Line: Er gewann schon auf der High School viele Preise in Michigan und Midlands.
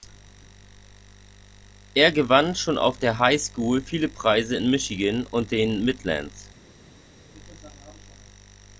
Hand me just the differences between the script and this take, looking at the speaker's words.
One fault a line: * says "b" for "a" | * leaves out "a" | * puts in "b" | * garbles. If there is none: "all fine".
* puts in "den"